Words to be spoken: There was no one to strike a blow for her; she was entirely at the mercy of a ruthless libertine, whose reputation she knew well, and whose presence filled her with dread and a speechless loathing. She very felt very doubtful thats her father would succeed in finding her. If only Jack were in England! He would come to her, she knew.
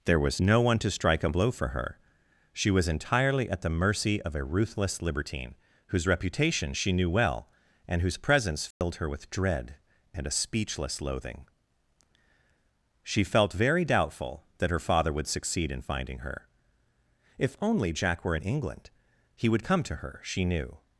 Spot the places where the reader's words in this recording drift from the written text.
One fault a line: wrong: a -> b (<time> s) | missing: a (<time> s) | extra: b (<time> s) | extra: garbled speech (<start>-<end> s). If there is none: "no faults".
missing: very (13.2 s)
wrong: thats -> that (14.6 s)